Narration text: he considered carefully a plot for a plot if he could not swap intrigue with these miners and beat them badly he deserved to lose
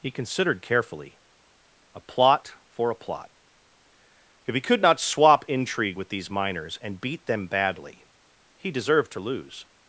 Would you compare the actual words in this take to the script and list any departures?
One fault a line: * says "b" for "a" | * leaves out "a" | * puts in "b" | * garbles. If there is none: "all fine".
all fine